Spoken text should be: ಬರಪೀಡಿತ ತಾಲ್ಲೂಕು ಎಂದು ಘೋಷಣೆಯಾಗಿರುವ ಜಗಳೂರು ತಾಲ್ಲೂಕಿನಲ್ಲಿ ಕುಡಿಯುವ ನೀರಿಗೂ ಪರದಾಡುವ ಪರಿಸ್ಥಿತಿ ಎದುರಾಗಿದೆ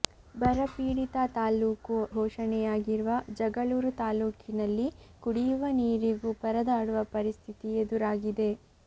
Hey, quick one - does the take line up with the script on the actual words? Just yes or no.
no